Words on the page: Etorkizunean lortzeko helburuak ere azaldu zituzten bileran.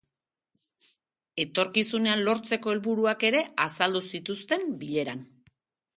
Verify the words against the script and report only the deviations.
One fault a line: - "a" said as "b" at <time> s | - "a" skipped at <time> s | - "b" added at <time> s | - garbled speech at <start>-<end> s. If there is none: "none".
none